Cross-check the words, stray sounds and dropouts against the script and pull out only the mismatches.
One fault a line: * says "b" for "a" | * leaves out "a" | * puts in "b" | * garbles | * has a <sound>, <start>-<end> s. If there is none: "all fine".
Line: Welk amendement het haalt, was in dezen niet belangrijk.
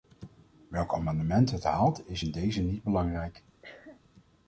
* says "is" for "was"
* has a cough, 3.6-4.0 s